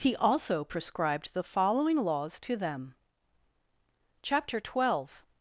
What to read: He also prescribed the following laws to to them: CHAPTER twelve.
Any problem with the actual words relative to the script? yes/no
yes